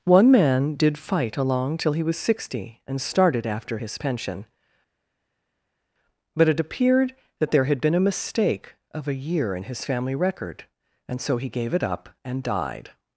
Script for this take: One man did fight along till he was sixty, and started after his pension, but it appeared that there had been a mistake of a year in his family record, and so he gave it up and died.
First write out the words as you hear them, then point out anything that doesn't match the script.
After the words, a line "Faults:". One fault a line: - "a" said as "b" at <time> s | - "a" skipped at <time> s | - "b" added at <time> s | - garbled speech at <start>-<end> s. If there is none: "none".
One man did fight along till he was sixty, and started after his pension, but it appeared that there had been a mistake of a year in his family record, and so he gave it up and died.
Faults:
none